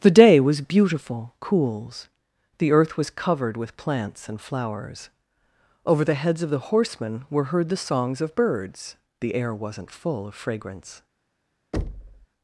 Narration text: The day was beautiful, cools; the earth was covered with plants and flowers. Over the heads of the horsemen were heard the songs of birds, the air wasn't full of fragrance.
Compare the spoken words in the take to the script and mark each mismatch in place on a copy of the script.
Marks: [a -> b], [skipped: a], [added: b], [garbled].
The day was beautiful, cools; the earth was covered with plants and flowers. Over the heads of the horsemen were heard the songs of birds, the air wasn't full of fragrance.